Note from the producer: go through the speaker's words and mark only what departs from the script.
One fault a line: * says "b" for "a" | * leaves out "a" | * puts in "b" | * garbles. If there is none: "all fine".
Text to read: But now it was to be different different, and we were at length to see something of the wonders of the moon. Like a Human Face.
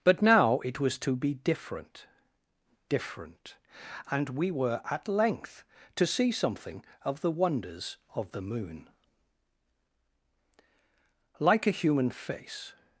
all fine